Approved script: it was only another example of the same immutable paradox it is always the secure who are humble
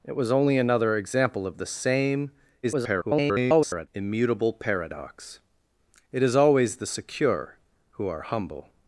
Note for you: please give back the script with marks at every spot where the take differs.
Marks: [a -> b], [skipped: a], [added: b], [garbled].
it was only another example of the same [garbled] immutable paradox it is always the secure who are humble